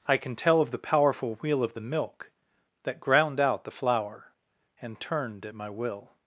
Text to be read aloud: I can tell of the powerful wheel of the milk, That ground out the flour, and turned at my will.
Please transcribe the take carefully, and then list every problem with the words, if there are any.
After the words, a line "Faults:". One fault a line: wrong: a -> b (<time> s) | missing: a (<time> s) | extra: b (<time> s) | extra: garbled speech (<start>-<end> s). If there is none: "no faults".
I can tell of the powerful wheel of the milk, That ground out the flour, and turned at my will.
Faults:
no faults